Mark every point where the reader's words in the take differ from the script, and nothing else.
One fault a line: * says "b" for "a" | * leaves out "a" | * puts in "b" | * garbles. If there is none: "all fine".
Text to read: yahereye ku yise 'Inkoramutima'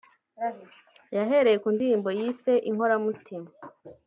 * puts in "ndirimbo"